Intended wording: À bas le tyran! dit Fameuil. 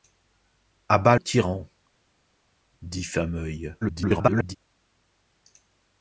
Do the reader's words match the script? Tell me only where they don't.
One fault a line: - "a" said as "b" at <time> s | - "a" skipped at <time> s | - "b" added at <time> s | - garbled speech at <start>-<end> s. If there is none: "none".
- "le" skipped at 1.1 s
- garbled speech at 3.8-4.6 s